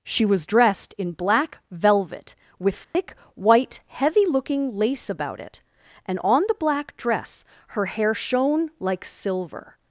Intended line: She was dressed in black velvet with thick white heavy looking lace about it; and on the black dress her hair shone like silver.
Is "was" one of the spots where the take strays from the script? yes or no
no